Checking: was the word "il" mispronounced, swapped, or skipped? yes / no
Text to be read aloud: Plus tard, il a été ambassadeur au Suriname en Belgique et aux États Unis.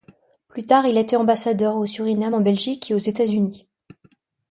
no